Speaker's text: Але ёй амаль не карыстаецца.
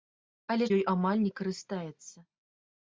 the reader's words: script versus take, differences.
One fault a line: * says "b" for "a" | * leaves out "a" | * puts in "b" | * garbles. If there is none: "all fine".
all fine